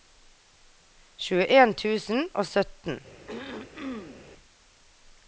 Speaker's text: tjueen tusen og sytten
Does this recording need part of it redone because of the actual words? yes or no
no